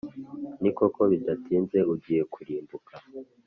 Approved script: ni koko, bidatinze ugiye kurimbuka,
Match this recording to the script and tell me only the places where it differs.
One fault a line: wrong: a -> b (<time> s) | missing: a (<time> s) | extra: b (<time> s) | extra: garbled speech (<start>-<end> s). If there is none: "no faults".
no faults